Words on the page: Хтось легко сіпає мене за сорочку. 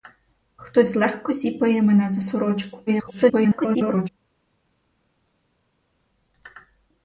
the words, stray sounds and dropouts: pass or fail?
fail